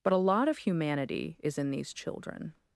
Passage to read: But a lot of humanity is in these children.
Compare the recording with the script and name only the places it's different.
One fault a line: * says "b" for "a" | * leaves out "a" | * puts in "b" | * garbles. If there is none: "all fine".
all fine